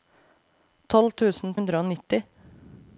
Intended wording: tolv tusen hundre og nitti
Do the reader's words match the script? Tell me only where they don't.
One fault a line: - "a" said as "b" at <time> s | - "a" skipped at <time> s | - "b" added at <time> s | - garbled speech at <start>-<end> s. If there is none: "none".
none